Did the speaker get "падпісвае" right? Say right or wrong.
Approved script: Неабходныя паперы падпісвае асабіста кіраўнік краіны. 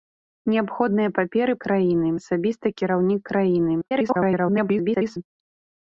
wrong